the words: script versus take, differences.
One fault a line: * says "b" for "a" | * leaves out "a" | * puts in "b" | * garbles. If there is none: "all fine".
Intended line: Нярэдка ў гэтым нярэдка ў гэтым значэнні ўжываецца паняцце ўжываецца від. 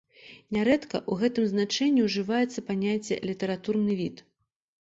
* leaves out "нярэдка ў гэтым"
* says "літаратурны" for "ўжываецца"